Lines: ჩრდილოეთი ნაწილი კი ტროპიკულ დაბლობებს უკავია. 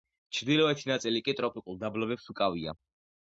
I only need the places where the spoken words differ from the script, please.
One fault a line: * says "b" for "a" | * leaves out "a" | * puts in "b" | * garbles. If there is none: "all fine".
all fine